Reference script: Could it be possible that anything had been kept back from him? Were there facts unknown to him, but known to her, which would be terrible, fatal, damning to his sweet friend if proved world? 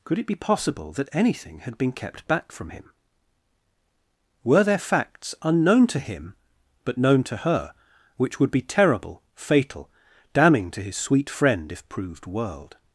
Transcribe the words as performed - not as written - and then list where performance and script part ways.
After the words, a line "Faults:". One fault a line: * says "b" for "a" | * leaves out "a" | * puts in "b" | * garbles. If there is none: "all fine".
Could it be possible that anything had been kept back from him? Were there facts unknown to him, but known to her, which would be terrible, fatal, damning to his sweet friend if proved world?
Faults:
all fine